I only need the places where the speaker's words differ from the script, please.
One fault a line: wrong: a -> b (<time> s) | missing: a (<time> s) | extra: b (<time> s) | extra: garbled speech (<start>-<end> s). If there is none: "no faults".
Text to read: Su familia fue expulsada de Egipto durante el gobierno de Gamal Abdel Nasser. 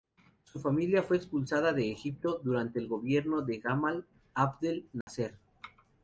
no faults